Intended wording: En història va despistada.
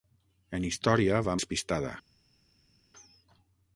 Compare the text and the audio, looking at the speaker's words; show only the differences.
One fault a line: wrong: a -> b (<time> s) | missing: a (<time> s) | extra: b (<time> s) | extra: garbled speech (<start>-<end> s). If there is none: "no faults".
no faults